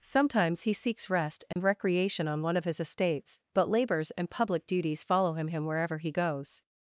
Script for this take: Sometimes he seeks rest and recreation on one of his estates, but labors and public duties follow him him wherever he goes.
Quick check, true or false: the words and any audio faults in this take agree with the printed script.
false